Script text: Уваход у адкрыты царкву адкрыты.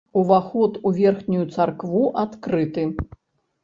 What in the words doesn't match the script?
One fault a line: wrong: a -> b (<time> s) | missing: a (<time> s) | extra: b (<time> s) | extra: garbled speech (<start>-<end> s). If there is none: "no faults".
wrong: адкрыты -> верхнюю (1.0 s)